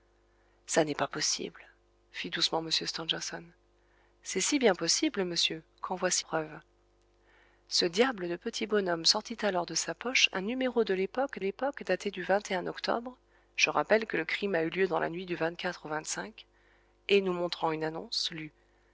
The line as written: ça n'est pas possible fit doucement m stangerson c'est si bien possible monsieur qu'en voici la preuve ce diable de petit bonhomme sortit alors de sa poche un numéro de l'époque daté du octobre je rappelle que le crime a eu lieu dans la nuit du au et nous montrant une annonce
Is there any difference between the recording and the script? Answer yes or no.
yes